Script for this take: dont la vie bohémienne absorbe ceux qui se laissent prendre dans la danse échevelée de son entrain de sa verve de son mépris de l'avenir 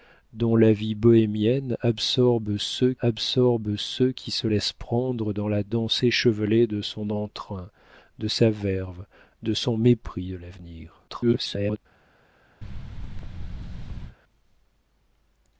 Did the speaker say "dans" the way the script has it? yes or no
yes